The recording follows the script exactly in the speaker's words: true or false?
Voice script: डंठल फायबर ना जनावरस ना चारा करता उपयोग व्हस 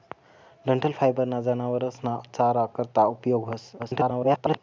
false